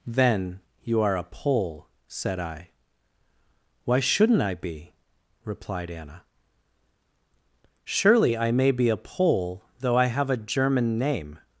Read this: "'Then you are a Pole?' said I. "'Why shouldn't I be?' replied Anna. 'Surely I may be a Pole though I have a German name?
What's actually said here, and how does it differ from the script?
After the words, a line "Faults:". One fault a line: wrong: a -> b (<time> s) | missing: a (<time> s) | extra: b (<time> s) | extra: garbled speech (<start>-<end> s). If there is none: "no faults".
"'Then you are a Pole?' said I. "'Why shouldn't I be?' replied Anna. 'Surely I may be a Pole though I have a German name?
Faults:
no faults